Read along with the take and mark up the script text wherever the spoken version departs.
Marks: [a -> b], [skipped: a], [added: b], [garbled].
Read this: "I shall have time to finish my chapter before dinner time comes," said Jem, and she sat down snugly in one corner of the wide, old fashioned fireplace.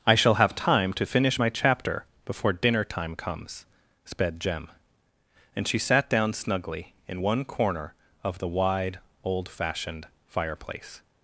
"I shall have time to finish my chapter before dinner time comes," [said -> sped] Jem, and she sat down snugly in one corner of the wide, old fashioned fireplace.